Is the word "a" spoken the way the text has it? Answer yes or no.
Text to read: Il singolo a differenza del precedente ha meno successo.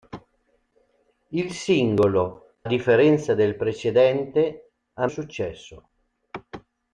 no